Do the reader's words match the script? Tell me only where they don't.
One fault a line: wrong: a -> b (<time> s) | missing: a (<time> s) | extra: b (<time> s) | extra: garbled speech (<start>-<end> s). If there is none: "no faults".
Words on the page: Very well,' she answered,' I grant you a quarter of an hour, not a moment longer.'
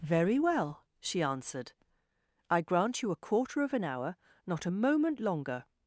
no faults